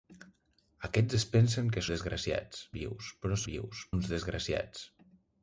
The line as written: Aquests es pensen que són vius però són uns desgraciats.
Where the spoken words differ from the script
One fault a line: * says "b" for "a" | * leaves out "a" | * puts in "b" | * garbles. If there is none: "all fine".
* says "desgraciats" for "són"
* says "vius" for "són"